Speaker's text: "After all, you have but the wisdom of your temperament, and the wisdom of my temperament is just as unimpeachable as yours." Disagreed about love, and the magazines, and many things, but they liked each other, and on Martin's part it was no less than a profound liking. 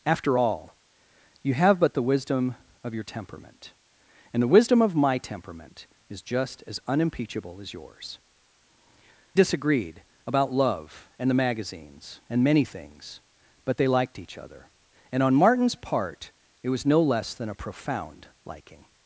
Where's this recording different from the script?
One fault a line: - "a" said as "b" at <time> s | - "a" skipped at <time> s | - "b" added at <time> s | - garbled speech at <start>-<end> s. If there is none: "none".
none